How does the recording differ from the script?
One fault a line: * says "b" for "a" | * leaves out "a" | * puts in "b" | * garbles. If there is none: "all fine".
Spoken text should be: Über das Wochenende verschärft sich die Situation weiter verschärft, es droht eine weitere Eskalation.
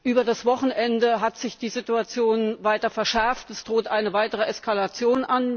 * says "hat" for "verschärft"